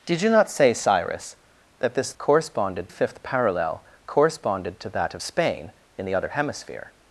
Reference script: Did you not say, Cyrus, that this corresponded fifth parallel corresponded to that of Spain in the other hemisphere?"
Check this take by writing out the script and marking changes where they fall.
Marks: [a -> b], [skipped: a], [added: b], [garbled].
Did you not say, Cyrus, that this corresponded fifth parallel corresponded to that of Spain in the other hemisphere?"